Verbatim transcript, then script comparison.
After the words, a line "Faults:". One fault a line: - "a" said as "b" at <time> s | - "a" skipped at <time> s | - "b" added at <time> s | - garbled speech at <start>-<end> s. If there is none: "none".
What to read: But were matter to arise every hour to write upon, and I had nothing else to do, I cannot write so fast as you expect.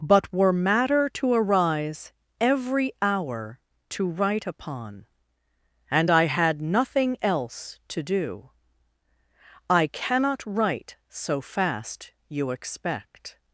But were matter to arise every hour to write upon, and I had nothing else to do, I cannot write so fast you expect.
Faults:
- "as" skipped at 12.1 s